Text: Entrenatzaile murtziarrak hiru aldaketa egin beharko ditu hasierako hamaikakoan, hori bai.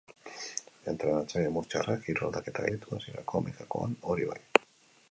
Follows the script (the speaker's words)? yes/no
no